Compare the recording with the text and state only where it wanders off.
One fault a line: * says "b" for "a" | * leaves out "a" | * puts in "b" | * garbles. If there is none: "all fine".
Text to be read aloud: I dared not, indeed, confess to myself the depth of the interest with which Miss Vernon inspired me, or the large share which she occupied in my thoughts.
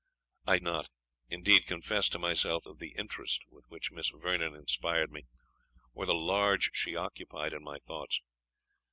* leaves out "dared"
* leaves out "the depth"
* leaves out "share which"